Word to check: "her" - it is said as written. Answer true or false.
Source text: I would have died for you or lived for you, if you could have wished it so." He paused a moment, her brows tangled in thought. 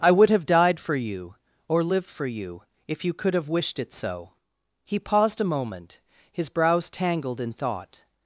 false